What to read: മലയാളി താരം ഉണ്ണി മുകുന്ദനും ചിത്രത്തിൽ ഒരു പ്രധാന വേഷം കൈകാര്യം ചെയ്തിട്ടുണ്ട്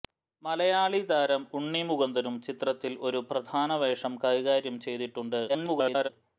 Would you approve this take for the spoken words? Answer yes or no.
no